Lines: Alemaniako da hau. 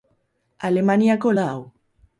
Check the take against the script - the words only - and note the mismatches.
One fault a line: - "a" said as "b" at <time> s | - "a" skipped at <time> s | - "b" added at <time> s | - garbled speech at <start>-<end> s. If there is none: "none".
none